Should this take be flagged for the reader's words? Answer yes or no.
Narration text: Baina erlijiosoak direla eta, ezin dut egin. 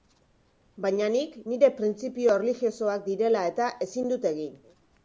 yes